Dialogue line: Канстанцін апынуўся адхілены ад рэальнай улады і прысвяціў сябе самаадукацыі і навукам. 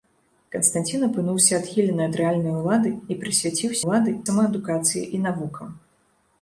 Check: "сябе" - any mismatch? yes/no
yes